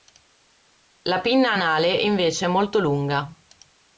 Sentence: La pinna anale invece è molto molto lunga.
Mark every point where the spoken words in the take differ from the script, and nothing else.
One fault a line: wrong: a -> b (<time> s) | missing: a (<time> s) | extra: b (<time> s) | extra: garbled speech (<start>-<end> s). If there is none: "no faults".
missing: molto (2.8 s)